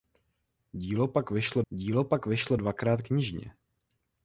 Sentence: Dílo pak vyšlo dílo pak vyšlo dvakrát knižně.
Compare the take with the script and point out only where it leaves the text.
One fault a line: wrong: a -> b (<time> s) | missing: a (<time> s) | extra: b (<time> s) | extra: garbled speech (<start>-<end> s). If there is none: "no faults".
no faults